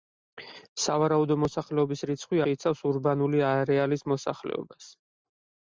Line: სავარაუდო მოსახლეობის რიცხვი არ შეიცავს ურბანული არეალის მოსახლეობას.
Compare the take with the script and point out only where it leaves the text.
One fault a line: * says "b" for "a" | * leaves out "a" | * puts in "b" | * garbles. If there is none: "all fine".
* leaves out "არ"